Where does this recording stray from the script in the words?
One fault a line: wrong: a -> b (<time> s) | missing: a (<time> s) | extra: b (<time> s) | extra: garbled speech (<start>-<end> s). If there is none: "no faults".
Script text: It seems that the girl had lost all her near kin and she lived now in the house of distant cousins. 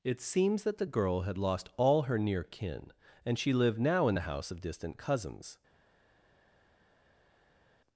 no faults